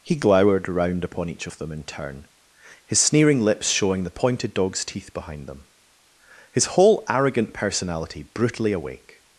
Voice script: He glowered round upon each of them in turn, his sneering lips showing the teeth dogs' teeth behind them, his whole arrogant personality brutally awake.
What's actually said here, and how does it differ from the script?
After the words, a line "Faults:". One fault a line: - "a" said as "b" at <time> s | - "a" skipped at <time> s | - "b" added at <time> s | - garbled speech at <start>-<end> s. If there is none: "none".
He glowered round upon each of them in turn, his sneering lips showing the pointed dogs' teeth behind them, his whole arrogant personality brutally awake.
Faults:
- "teeth" said as "pointed" at 4.1 s